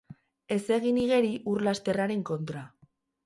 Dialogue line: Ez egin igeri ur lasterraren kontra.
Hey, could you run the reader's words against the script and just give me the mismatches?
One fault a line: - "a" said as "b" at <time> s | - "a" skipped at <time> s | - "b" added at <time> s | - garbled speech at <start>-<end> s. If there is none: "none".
none